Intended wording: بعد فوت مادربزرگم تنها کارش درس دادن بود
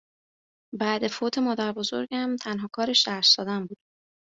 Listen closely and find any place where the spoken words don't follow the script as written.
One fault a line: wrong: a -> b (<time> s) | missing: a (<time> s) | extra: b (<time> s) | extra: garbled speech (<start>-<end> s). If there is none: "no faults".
no faults